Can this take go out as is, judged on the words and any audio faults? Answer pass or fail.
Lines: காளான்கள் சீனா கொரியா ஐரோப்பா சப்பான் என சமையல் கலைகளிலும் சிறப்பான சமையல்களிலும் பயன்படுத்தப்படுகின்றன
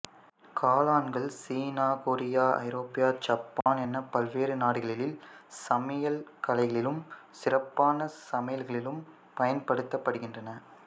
fail